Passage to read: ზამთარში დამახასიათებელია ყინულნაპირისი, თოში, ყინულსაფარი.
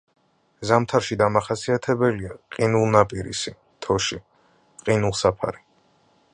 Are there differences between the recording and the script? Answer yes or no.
no